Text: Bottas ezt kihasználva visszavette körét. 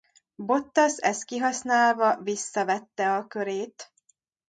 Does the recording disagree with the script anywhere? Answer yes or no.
yes